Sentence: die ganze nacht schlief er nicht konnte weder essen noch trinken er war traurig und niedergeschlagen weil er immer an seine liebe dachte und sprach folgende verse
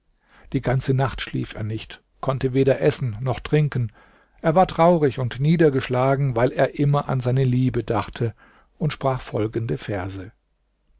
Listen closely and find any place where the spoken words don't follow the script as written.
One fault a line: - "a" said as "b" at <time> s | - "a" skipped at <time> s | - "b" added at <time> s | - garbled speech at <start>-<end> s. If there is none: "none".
none